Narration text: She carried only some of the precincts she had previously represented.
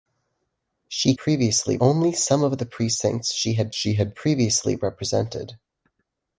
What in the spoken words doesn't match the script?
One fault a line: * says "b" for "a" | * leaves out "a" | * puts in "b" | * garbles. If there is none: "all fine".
* says "previously" for "carried"
* puts in "she had"